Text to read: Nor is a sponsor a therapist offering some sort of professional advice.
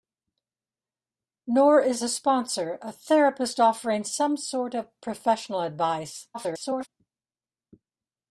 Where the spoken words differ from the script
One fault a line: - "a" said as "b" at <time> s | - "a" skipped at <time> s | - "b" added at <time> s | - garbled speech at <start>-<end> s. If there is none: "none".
- garbled speech at 6.3-6.9 s